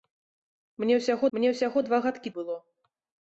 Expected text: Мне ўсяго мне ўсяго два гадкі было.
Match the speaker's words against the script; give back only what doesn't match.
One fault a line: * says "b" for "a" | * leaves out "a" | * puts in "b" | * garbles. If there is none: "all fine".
all fine